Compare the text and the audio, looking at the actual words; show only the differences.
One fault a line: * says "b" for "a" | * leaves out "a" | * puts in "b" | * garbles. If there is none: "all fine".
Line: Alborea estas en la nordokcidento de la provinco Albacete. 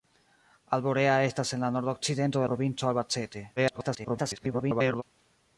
* leaves out "la"
* garbles